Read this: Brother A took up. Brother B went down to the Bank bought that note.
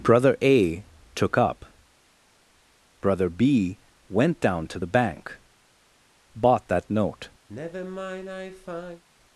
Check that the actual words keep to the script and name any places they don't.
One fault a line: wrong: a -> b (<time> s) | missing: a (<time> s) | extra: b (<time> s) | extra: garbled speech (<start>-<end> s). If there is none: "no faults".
no faults